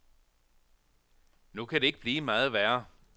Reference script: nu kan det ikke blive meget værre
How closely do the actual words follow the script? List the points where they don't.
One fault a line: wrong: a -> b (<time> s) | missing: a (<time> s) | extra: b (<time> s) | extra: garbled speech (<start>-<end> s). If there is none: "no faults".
no faults